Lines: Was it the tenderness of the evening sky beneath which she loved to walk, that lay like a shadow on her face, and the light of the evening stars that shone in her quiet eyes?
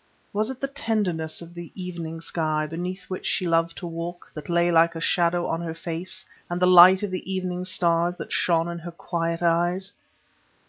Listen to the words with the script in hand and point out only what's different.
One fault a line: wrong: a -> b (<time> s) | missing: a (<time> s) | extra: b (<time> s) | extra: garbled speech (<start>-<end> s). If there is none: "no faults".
no faults